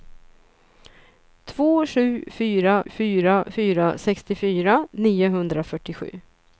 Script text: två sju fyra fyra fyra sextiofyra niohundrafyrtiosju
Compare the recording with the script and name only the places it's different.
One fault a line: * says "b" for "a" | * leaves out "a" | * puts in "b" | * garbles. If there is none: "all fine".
all fine